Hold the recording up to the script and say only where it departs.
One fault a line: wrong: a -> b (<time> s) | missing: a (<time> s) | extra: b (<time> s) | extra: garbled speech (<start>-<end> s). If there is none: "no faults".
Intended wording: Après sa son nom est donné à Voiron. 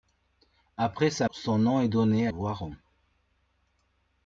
no faults